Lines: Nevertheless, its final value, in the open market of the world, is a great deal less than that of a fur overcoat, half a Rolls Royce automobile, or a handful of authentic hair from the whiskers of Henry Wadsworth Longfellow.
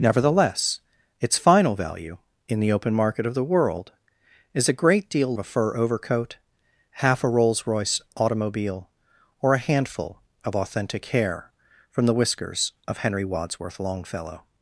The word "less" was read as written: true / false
false